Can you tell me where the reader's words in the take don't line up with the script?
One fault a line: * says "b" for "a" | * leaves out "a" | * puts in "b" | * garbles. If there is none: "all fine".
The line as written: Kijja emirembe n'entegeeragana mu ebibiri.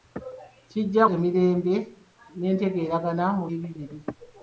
all fine